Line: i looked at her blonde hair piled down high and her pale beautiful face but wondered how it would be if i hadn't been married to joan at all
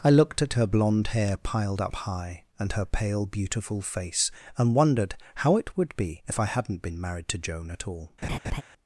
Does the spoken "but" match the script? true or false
false